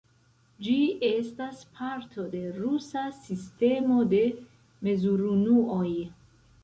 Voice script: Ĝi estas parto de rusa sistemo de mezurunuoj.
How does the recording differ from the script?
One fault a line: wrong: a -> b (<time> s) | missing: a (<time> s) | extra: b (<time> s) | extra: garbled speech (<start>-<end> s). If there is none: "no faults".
no faults